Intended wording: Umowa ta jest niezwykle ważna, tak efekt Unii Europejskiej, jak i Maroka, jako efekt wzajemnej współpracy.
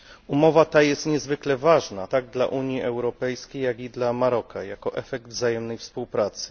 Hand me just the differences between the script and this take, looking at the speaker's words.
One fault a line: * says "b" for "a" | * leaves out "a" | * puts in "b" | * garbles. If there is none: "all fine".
* says "dla" for "efekt"
* puts in "dla"